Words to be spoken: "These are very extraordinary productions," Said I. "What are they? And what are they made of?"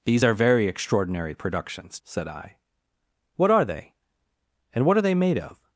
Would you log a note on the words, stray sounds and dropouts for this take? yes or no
no